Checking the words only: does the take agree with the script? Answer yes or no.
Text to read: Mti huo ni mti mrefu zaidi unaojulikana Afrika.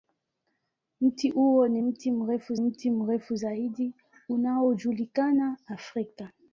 no